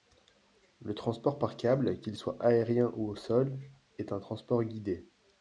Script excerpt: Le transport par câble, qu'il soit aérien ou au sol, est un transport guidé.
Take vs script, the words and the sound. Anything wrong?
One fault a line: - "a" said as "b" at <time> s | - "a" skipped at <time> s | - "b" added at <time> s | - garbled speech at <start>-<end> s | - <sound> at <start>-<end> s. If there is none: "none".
none